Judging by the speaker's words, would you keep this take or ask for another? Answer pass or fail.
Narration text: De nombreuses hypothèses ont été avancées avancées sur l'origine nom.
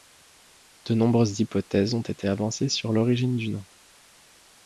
fail